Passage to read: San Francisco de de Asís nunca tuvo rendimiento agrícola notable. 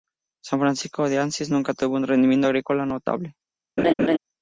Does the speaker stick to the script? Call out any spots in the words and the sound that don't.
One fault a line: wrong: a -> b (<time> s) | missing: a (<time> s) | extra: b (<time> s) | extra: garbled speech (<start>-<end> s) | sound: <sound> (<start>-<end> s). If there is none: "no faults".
missing: de (1.2 s)
extra: un (1.9 s)
sound: laugh (3.8-4.2 s)